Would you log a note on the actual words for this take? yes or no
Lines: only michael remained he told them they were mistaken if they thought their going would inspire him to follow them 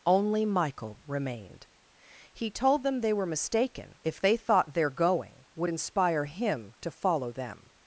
no